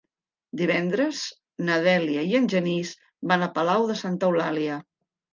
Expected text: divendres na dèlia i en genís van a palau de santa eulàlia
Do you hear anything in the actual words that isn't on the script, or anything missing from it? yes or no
no